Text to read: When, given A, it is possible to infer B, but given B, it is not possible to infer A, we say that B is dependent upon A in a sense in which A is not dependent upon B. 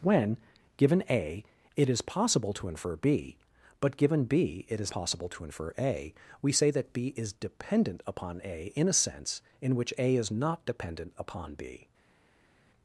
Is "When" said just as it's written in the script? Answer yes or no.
yes